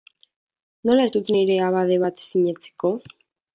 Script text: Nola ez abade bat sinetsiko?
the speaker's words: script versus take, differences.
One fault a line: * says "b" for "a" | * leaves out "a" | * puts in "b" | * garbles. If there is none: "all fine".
* puts in "dut nire"